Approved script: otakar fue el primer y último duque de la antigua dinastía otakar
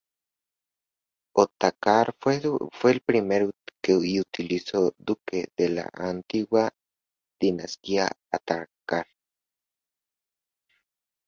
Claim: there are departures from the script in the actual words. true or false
false